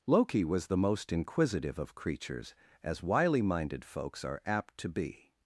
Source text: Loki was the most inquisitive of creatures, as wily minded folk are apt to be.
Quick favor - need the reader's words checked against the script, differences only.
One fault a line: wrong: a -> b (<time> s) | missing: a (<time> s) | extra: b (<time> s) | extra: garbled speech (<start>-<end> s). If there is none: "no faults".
wrong: folk -> folks (3.9 s)